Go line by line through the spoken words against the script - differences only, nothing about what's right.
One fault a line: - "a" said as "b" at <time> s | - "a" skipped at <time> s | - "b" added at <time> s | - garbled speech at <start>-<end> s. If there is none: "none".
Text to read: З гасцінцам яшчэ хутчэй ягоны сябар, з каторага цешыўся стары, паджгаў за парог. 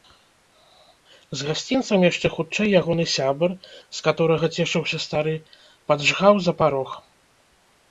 none